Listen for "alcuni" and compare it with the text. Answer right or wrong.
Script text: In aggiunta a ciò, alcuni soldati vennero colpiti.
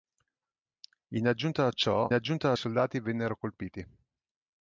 wrong